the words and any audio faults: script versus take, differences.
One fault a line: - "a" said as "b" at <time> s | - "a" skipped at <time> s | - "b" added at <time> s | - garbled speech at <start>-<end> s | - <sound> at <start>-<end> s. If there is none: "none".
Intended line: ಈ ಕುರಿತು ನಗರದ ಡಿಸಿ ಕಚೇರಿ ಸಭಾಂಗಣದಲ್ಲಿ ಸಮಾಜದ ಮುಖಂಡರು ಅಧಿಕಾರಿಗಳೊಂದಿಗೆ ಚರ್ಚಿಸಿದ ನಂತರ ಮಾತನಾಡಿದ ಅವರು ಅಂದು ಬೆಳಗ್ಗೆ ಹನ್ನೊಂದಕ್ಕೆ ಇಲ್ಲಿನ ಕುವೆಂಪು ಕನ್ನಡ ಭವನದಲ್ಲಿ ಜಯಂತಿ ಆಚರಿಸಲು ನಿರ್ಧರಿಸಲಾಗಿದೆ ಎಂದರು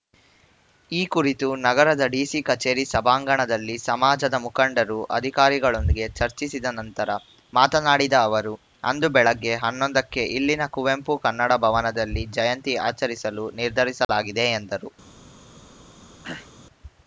- dropout at 14.0-14.1 s
- throat clearing at 16.2-16.5 s